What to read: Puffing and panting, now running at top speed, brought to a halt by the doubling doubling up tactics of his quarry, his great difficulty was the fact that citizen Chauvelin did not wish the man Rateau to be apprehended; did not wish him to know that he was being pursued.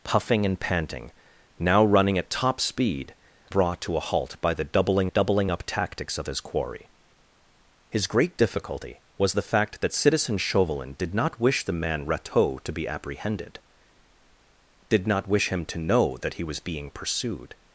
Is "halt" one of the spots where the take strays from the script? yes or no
no